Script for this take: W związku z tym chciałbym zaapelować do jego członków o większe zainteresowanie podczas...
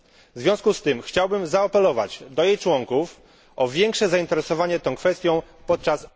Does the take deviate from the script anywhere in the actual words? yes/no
yes